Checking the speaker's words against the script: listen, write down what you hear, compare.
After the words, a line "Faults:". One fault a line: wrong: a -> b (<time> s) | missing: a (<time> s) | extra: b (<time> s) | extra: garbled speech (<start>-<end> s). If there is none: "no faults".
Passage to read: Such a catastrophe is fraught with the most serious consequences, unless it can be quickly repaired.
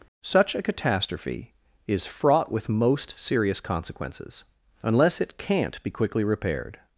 Such a catastrophe is fraught with most serious consequences, unless it can't be quickly repaired.
Faults:
missing: the (2.7 s)
wrong: can -> can't (5.4 s)